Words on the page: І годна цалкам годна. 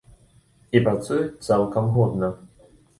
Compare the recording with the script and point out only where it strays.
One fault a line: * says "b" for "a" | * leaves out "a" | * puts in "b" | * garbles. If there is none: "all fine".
* says "працуюць" for "годна"